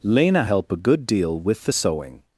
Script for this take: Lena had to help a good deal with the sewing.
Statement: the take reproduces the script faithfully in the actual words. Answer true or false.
false